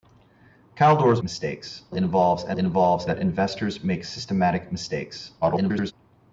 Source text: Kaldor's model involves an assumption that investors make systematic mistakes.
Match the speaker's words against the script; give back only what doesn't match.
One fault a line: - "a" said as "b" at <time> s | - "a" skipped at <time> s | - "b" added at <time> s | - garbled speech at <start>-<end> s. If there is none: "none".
- "model" said as "mistakes" at 1.2 s
- "assumption" said as "involves" at 2.5 s
- garbled speech at 5.4-5.9 s